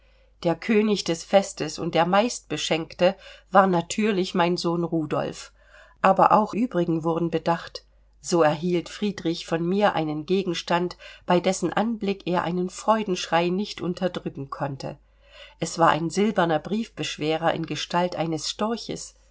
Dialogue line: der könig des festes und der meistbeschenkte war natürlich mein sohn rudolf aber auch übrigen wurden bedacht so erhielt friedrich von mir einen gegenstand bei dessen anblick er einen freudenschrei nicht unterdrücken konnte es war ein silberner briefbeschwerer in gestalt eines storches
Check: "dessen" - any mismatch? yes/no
no